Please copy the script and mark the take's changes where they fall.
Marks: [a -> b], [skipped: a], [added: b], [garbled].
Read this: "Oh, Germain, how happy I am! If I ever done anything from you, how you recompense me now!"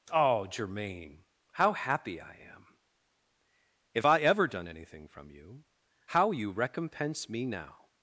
"Oh, Germain, how happy I am! If I ever done anything from you, how you recompense me now!"